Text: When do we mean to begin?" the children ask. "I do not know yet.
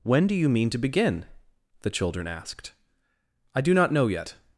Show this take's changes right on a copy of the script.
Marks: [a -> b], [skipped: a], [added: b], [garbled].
When do [we -> you] mean to begin?" the children [ask. -> asked] "I do not know yet.